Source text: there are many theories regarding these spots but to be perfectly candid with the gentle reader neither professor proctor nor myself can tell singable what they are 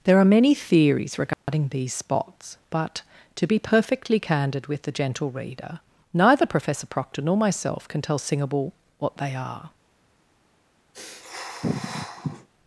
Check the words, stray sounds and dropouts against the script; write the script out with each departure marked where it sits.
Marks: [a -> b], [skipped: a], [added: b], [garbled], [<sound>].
there are many theories regarding [dropout] these spots but to be perfectly candid with the gentle reader neither professor proctor nor myself can tell singable what they are [sniff]